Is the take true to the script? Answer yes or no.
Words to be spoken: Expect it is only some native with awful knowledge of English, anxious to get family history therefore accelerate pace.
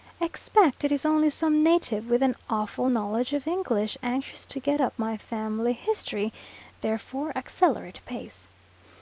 no